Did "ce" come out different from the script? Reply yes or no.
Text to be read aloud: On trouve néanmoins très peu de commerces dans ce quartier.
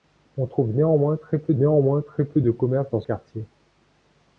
yes